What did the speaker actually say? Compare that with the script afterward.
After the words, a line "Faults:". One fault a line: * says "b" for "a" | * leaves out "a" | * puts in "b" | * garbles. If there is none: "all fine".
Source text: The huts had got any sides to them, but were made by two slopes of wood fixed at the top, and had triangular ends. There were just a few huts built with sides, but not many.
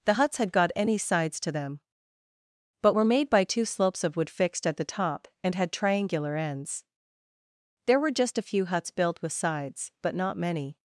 The huts had got any sides to them, but were made by two slopes of wood fixed at the top, and had triangular ends. There were just a few huts built with sides, but not many.
Faults:
all fine